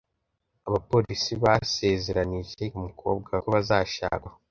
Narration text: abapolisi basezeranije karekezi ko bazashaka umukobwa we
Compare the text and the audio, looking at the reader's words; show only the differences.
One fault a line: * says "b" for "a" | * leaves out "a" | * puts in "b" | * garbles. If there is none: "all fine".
* says "umukobwa" for "karekezi"
* leaves out "umukobwa"